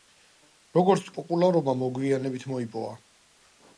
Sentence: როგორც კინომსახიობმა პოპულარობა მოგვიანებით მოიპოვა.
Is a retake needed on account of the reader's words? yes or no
yes